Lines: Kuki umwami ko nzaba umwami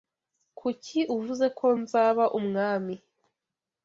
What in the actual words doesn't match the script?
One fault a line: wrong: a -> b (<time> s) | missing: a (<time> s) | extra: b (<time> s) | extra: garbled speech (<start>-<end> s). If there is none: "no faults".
wrong: umwami -> uvuze (1.2 s)